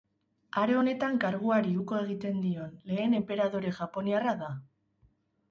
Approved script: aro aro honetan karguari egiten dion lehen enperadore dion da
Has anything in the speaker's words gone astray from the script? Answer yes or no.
yes